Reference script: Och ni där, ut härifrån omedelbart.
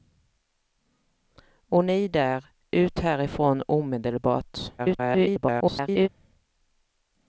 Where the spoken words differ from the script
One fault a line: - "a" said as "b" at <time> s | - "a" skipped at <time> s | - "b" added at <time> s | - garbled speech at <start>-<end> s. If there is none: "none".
- garbled speech at 4.8-6.1 s